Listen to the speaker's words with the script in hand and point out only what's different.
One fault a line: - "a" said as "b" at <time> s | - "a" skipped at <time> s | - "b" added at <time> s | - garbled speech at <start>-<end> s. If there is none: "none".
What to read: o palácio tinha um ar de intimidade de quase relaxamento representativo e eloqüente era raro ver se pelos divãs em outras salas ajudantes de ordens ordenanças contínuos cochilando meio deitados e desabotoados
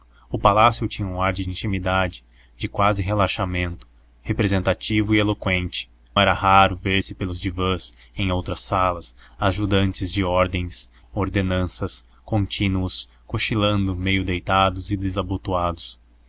none